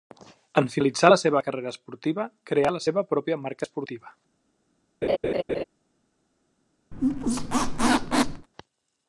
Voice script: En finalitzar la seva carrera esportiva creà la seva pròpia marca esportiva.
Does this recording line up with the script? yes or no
yes